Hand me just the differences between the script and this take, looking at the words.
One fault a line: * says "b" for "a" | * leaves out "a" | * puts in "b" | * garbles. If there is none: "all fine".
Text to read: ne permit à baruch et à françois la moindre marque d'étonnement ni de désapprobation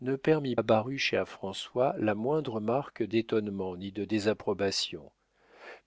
all fine